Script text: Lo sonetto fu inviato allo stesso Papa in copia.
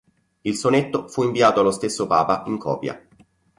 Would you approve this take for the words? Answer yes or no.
no